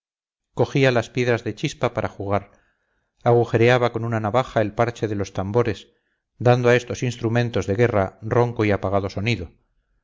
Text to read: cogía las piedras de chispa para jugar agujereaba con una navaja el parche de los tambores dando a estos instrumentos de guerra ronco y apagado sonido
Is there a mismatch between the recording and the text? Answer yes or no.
no